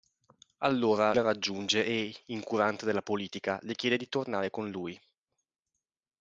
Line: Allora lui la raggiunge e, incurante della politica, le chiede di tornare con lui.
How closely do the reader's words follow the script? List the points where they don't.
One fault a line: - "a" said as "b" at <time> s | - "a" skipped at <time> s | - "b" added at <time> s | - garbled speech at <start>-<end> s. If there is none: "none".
- "lui" skipped at 1.1 s